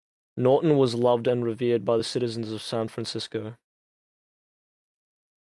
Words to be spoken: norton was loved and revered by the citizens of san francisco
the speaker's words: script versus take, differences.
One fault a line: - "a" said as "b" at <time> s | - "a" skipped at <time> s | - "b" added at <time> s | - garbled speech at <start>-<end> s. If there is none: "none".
none